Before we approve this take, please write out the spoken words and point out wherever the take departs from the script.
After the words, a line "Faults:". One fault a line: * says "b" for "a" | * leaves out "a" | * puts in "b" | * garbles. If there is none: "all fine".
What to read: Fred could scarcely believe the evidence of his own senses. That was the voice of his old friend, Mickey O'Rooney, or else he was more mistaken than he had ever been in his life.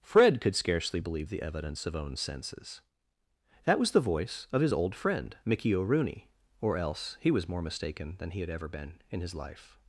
Fred could scarcely believe the evidence of own senses. That was the voice of his old friend, Mickey O'Rooney, or else he was more mistaken than he had ever been in his life.
Faults:
* leaves out "his"